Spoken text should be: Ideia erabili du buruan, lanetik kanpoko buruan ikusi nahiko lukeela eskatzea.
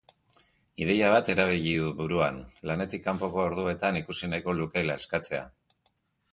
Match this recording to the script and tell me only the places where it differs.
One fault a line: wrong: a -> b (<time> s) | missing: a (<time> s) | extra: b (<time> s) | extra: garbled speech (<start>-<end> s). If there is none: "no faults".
extra: bat (1.1 s)
wrong: buruan -> orduetan (3.5 s)